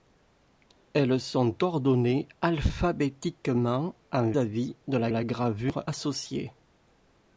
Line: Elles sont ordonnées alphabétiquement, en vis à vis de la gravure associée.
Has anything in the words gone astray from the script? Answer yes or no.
yes